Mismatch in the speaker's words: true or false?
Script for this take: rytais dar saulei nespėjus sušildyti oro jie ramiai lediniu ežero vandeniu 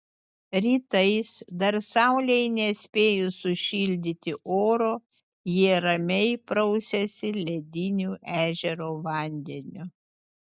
true